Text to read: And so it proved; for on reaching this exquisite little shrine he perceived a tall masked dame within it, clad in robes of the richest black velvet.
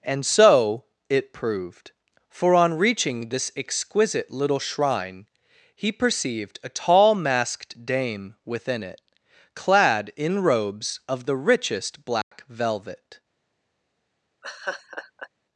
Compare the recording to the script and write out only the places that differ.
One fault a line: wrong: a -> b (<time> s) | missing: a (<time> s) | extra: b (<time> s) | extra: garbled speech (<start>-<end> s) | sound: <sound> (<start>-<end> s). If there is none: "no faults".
sound: dropout (12.2-12.3 s)
sound: laugh (14.4-15.3 s)